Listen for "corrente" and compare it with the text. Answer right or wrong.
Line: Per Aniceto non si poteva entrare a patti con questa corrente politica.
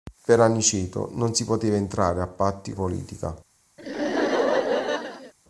wrong